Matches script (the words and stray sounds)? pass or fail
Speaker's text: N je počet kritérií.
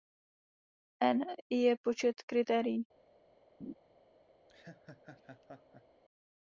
fail